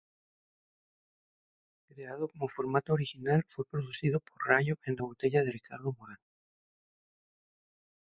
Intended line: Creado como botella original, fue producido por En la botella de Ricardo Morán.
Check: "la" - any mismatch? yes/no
no